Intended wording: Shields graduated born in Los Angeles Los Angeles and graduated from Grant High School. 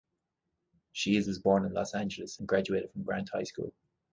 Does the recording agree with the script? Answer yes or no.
no